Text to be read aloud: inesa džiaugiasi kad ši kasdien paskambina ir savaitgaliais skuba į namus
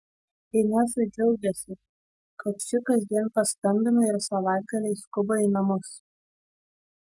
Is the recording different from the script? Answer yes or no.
no